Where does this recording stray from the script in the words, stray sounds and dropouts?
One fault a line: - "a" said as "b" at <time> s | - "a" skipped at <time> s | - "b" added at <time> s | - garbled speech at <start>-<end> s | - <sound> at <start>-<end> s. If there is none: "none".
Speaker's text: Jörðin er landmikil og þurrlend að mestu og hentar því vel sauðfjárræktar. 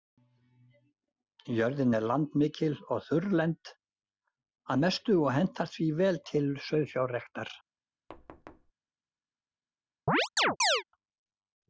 - "til" added at 6.3 s
- thud at 8.1-8.7 s
- chirp at 10.1-10.8 s